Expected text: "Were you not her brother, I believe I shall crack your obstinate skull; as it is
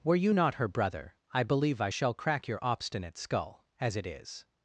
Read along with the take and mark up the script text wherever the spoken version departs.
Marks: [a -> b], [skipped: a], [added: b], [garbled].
"Were you not her brother, I believe I shall crack your obstinate skull; as it is